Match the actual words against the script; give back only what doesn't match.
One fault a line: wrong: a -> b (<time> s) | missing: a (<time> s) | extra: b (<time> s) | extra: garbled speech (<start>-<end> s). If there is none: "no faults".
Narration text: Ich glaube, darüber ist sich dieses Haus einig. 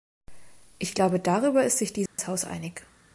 no faults